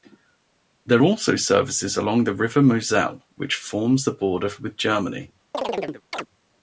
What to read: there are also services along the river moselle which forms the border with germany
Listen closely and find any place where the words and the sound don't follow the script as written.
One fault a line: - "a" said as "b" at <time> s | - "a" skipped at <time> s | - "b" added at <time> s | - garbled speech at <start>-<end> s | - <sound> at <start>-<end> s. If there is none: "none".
- "are" skipped at 1.0 s
- chirp at 5.5-6.3 s